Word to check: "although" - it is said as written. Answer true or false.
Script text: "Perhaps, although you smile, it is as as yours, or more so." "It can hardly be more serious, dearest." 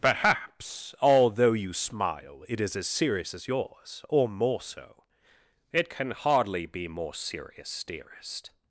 true